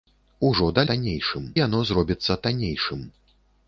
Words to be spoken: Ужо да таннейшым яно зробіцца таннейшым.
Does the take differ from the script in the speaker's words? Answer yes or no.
no